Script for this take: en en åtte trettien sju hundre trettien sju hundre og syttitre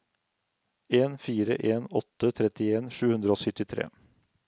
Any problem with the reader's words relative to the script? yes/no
yes